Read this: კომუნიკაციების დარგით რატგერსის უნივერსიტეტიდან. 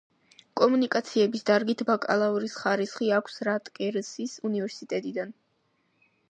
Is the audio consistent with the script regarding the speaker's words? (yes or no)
no